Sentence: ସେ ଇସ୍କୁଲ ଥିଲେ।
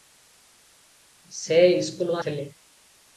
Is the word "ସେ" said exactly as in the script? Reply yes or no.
yes